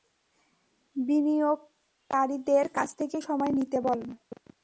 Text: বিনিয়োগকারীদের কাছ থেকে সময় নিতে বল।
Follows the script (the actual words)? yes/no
yes